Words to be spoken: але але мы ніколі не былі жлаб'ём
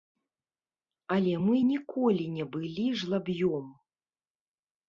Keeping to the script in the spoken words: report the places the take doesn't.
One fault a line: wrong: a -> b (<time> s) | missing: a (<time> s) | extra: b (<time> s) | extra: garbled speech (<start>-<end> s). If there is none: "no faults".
missing: але (1.3 s)